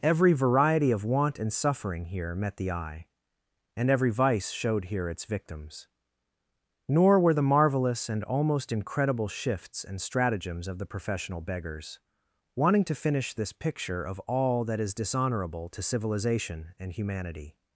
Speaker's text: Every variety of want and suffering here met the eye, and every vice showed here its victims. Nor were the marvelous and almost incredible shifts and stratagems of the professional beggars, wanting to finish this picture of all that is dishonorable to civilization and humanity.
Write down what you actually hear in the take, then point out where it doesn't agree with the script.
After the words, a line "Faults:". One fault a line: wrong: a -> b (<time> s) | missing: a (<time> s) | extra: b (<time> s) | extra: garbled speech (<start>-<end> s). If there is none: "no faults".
Every variety of want and suffering here met the eye, and every vice showed here its victims. Nor were the marvelous and almost incredible shifts and stratagems of the professional beggars, wanting to finish this picture of all that is dishonorable to civilization and humanity.
Faults:
no faults